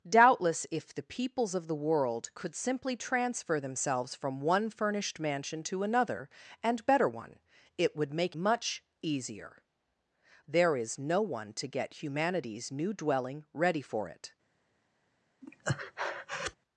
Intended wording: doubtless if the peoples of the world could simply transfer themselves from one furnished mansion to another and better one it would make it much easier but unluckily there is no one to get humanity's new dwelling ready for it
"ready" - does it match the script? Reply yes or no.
yes